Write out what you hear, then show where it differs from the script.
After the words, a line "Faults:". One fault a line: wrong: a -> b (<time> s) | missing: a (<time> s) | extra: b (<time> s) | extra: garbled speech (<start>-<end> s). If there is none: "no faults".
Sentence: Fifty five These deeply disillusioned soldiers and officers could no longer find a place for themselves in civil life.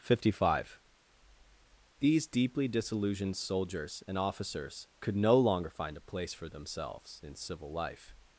Fifty five These deeply disillusioned soldiers and officers could no longer find a place for themselves in civil life.
Faults:
no faults